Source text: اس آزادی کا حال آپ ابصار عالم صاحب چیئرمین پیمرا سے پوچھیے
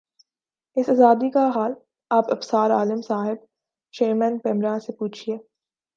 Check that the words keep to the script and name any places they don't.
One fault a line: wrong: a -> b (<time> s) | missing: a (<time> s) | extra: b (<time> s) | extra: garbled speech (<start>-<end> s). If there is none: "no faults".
no faults